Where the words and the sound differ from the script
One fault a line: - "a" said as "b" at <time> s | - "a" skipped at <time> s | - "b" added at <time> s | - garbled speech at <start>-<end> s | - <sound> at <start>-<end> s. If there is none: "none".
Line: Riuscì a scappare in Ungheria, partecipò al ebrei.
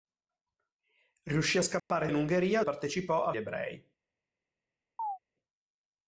- dropout at 1.8-1.9 s
- chirp at 5.0-5.2 s